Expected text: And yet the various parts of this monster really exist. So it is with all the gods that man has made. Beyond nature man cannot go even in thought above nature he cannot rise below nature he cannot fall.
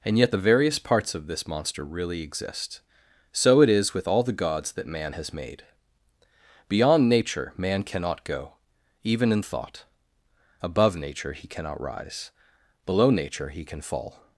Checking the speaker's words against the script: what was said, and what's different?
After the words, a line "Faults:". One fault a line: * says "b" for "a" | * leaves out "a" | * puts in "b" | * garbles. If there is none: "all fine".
And yet the various parts of this monster really exist. So it is with all the gods that man has made. Beyond nature man cannot go even in thought above nature he cannot rise below nature he can fall.
Faults:
* says "can" for "cannot"